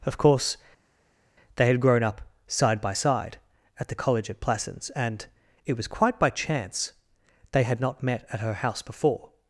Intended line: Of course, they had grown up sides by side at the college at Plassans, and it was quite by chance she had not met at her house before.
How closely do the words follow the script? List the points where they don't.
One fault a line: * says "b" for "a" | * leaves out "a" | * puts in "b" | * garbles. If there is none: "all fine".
* says "side" for "sides"
* says "they" for "she"